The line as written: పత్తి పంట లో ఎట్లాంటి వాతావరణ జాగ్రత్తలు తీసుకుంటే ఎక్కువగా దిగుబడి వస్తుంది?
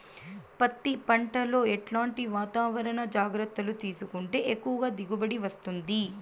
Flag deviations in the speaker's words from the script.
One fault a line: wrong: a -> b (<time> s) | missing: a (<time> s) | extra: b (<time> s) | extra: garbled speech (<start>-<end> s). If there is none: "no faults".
no faults